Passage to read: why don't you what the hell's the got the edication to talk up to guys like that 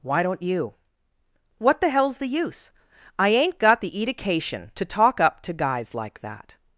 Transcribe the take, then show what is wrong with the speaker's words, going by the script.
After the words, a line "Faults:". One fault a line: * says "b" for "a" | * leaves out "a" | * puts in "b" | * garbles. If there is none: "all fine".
why don't you what the hell's the use i ain't got the edication to talk up to guys like that
Faults:
* puts in "use i ain't"